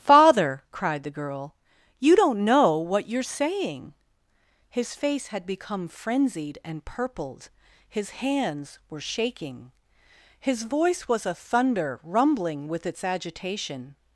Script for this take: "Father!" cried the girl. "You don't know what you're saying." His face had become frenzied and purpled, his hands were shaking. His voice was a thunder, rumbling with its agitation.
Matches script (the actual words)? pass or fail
pass